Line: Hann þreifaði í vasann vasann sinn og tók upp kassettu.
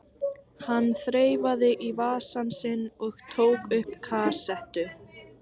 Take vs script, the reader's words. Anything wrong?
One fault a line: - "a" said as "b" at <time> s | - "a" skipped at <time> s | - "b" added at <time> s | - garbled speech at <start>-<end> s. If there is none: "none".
- "vasann" skipped at 2.5 s